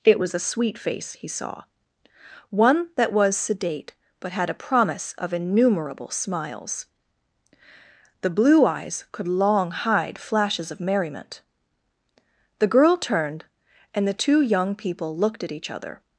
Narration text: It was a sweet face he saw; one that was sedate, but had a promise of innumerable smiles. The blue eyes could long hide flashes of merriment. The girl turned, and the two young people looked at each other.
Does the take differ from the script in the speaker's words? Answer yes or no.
no